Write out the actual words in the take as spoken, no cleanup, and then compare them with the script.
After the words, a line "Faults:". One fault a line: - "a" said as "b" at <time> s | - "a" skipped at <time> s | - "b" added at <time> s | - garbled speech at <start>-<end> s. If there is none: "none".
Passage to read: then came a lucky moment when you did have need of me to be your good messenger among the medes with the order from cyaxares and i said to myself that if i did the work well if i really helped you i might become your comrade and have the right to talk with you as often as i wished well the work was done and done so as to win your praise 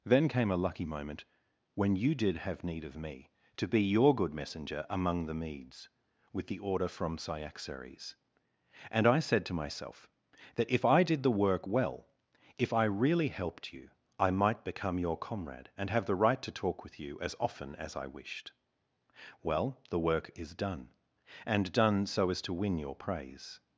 then came a lucky moment when you did have need of me to be your good messenger among the medes with the order from cyaxares and i said to myself that if i did the work well if i really helped you i might become your comrade and have the right to talk with you as often as i wished well the work is done and done so as to win your praise
Faults:
- "was" said as "is" at 20.4 s